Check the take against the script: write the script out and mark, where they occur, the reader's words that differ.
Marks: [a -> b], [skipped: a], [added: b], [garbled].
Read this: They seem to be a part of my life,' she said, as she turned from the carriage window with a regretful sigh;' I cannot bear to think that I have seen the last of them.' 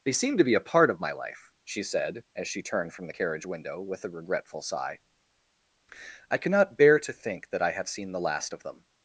They seem to be a part of my life,' she said, as she turned from the carriage window with a regretful sigh;' I cannot bear to think that I have seen the last of them.'